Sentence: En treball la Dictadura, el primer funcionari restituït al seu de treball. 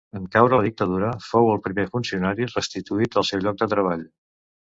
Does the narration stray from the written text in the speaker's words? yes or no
yes